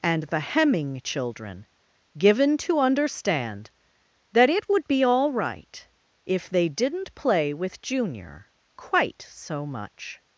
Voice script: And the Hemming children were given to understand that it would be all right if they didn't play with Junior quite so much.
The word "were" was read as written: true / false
false